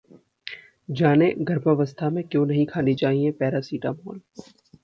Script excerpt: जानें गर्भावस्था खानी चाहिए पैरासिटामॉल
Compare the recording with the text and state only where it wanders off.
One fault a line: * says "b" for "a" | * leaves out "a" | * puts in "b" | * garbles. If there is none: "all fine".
* puts in "में क्यों नहीं"